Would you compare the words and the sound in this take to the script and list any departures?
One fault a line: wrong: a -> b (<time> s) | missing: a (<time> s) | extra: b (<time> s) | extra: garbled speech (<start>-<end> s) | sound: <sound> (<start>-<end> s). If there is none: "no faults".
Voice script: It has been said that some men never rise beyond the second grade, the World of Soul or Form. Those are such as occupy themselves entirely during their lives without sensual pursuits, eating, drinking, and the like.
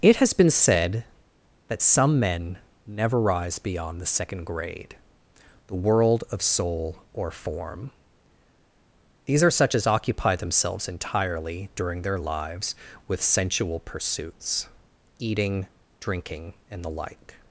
wrong: Those -> These (9.2 s)
wrong: without -> with (13.1 s)